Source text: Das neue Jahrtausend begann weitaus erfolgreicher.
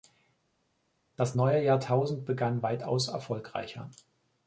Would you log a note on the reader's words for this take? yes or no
no